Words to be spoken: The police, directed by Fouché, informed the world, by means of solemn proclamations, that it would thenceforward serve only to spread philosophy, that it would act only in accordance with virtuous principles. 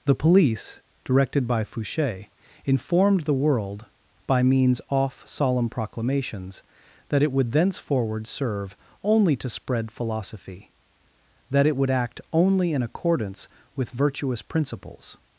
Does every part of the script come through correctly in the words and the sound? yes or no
no